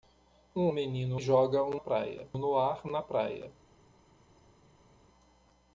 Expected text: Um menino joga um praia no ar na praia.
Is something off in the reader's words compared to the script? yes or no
no